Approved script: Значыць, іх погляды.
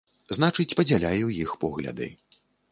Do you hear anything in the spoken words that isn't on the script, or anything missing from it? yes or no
yes